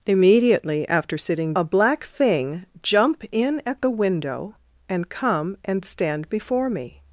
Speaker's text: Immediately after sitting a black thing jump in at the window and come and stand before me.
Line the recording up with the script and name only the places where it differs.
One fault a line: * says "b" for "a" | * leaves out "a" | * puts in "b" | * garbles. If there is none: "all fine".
all fine